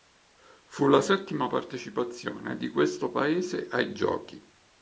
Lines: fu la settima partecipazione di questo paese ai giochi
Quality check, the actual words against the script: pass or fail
pass